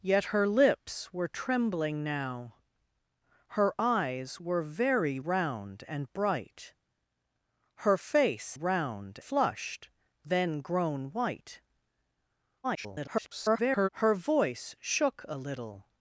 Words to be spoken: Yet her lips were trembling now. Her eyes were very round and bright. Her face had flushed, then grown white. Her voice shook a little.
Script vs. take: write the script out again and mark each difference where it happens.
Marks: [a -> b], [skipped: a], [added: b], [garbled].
Yet her lips were trembling now. Her eyes were very round and bright. Her face [had -> round] flushed, then grown white. [garbled] Her voice shook a little.